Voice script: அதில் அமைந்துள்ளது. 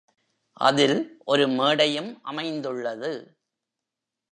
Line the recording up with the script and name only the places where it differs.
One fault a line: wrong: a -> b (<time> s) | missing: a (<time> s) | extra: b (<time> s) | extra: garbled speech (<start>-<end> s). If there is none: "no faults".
extra: ஒரு மேடையும் (1.2 s)